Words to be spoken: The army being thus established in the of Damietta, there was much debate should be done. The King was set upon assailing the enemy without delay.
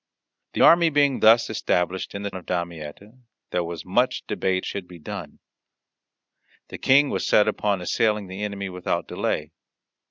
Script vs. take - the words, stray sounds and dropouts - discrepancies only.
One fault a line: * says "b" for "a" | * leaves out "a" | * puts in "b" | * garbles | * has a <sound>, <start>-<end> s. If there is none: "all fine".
all fine